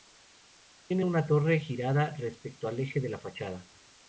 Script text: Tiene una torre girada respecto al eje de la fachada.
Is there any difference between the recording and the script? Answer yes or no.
no